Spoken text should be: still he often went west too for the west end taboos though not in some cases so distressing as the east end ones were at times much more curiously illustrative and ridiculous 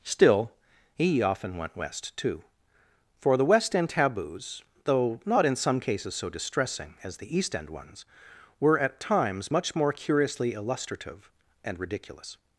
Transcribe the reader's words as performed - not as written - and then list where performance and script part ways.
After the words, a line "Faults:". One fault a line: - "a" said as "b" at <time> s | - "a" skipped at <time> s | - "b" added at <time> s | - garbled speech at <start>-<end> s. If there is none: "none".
still he often went west too for the west end taboos though not in some cases so distressing as the east end ones were at times much more curiously illustrative and ridiculous
Faults:
none